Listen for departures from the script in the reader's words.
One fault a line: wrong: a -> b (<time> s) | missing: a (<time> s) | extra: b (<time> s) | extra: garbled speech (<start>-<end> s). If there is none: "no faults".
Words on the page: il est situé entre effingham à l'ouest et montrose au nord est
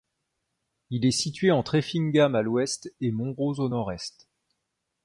no faults